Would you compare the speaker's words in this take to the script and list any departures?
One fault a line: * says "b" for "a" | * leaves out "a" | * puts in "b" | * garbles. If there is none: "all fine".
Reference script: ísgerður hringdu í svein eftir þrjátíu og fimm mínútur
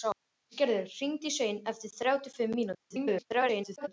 * garbles